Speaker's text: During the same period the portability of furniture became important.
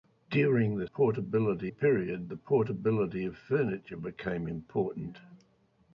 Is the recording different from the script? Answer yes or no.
yes